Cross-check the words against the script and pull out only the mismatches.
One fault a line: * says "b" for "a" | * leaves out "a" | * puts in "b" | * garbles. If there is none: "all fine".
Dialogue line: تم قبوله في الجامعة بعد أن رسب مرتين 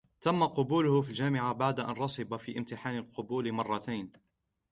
* puts in "في امتحان القبول"